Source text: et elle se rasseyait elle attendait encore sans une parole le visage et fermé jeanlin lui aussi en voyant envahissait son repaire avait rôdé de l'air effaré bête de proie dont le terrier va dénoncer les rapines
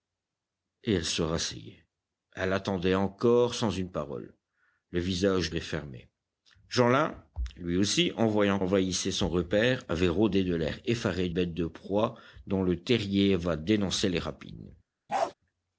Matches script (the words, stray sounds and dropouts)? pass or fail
fail